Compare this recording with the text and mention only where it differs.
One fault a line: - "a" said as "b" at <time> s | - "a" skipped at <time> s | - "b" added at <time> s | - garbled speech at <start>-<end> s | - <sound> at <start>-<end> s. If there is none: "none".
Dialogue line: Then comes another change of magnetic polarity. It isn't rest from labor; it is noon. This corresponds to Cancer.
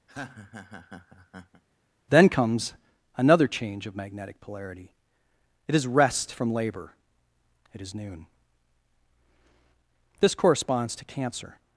- laugh at 0.1-1.6 s
- "isn't" said as "is" at 5.8 s